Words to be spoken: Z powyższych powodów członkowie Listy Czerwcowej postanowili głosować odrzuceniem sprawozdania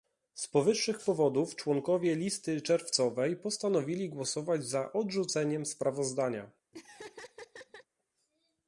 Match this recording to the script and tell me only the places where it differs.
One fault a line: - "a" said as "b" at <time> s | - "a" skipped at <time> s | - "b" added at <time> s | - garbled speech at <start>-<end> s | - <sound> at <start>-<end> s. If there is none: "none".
- "za" added at 4.7 s
- laugh at 6.7-7.9 s